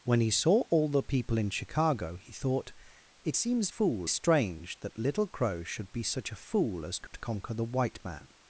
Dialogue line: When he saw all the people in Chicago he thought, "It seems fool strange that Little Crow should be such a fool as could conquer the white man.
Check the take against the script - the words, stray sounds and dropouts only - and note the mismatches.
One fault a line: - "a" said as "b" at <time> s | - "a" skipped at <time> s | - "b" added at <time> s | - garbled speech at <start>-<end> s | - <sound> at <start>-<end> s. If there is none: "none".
- dropout at 7.1-7.1 s